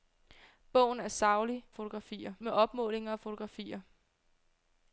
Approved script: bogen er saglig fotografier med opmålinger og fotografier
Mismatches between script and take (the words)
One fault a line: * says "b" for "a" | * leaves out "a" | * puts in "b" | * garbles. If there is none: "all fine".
all fine